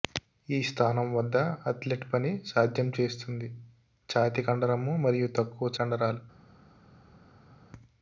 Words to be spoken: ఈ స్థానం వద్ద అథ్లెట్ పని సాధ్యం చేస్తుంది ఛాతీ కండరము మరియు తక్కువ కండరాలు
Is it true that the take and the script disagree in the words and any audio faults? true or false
false